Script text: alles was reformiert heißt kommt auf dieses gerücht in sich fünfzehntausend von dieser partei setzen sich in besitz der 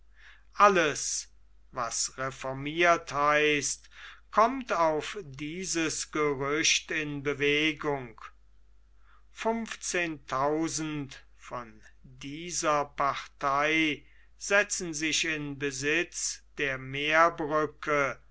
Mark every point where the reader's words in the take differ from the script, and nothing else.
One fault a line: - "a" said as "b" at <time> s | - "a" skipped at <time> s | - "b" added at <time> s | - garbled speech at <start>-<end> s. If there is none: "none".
- "sich" said as "bewegung" at 7.2 s